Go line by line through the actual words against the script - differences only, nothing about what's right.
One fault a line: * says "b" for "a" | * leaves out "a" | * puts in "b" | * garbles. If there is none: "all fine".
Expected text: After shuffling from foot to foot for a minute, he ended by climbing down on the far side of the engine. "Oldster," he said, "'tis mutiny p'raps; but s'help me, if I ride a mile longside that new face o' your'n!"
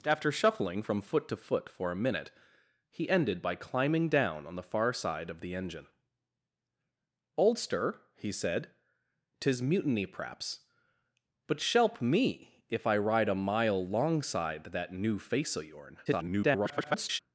* garbles